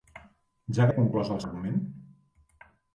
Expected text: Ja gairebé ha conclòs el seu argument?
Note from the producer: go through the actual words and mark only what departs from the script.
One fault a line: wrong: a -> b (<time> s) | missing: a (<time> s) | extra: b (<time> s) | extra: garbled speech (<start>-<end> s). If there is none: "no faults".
missing: gairebé (0.9 s)
missing: seu (1.4 s)